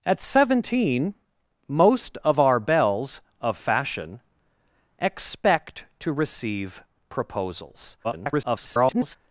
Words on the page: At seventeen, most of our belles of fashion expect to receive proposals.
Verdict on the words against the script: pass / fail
fail